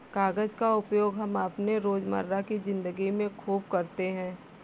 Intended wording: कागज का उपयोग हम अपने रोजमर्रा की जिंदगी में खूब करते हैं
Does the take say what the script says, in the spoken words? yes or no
yes